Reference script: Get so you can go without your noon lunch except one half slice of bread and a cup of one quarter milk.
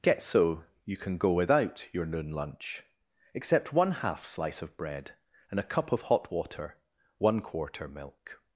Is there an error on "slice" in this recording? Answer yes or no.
no